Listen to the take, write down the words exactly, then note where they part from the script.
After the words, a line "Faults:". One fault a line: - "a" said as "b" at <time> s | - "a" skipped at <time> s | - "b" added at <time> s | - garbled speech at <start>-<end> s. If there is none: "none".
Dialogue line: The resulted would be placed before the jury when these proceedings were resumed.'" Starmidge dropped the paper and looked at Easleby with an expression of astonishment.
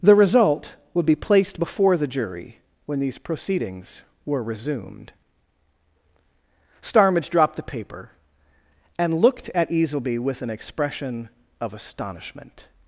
The result would be placed before the jury when these proceedings were resumed.'" Starmidge dropped the paper and looked at Easleby with an expression of astonishment.
Faults:
- "resulted" said as "result" at 0.1 s